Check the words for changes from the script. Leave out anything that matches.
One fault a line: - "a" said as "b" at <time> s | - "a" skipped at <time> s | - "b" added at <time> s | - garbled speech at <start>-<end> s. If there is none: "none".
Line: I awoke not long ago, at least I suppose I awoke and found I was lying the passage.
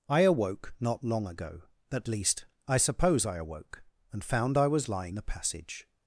none